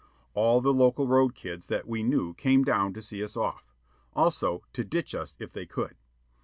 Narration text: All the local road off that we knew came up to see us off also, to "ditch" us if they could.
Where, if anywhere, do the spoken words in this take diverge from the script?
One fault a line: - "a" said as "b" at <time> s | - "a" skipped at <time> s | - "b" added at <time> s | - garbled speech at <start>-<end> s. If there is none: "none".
- "off" said as "kids" at 1.4 s
- "up" said as "down" at 2.6 s